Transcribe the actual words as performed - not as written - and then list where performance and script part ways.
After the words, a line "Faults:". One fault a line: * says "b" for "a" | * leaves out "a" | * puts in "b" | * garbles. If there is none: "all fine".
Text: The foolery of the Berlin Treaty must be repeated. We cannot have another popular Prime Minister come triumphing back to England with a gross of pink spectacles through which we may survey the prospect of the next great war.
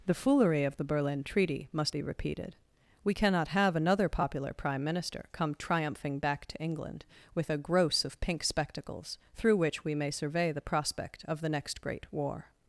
The foolery of the Berlin Treaty must be repeated. We cannot have another popular Prime Minister come triumphing back to England with a gross of pink spectacles through which we may survey the prospect of the next great war.
Faults:
all fine